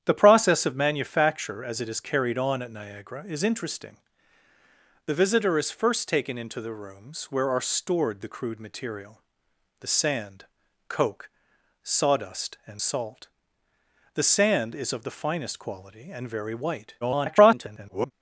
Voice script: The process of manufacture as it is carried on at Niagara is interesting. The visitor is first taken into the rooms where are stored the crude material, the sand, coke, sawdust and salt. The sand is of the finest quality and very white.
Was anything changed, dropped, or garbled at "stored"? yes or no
no